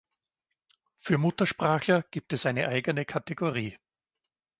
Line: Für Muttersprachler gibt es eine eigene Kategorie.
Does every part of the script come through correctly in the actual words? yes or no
yes